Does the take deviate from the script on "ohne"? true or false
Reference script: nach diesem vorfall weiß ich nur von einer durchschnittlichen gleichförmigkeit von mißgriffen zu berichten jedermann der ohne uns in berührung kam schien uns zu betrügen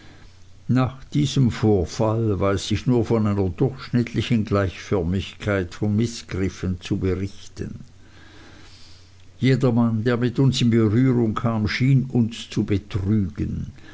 true